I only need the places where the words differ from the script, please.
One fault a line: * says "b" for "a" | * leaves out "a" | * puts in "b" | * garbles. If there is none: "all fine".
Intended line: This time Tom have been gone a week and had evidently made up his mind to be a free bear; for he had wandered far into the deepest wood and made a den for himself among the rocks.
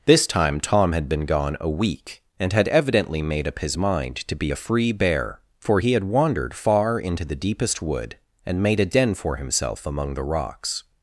* says "had" for "have"